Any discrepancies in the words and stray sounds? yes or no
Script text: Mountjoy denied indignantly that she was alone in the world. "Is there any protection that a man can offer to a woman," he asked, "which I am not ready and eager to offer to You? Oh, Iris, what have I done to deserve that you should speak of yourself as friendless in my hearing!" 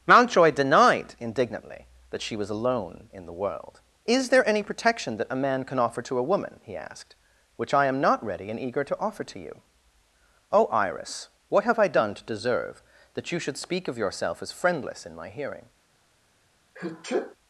yes